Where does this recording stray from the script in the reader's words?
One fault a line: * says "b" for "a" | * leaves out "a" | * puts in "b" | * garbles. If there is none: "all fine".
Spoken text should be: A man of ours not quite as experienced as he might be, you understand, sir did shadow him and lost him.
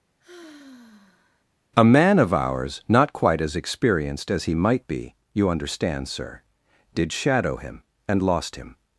all fine